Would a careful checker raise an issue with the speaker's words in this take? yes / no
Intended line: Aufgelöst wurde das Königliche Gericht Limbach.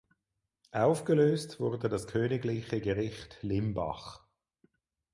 no